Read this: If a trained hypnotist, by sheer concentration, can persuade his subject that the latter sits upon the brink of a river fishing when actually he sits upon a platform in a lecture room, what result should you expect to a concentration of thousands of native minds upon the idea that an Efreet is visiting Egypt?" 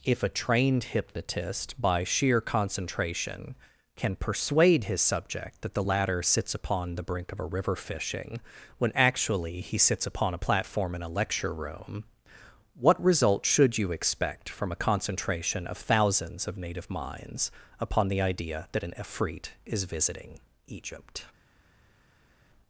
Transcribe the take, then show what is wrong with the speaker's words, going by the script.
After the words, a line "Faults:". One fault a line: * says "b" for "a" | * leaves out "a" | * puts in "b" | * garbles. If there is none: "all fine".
If a trained hypnotist, by sheer concentration, can persuade his subject that the latter sits upon the brink of a river fishing when actually he sits upon a platform in a lecture room, what result should you expect from a concentration of thousands of native minds upon the idea that an Efreet is visiting Egypt?"
Faults:
* says "from" for "to"